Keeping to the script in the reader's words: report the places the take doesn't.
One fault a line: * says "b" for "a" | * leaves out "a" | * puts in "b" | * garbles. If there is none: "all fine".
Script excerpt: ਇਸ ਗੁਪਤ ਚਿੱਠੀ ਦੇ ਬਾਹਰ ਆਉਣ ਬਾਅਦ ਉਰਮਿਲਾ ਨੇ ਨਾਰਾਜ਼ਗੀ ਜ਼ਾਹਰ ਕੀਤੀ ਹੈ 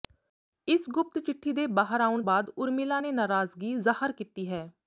all fine